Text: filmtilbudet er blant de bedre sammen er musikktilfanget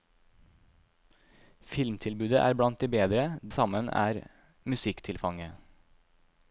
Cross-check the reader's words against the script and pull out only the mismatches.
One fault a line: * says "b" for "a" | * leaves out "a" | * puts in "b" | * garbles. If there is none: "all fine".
all fine